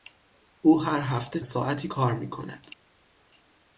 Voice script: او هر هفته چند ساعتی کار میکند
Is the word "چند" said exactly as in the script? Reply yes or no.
no